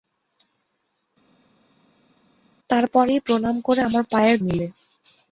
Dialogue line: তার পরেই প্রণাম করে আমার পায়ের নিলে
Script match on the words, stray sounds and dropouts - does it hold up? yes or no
yes